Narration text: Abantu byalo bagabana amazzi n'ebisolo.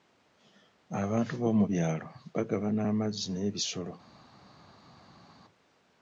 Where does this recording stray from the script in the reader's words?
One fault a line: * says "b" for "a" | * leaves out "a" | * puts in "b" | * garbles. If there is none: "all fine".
* puts in "b'omu"